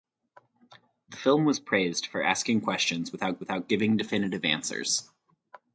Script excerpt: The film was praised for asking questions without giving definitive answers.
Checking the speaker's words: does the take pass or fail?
fail